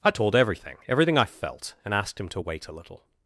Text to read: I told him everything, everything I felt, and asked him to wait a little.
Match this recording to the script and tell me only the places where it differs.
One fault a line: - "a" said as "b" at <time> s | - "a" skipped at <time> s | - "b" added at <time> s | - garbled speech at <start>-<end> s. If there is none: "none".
- "him" skipped at 0.3 s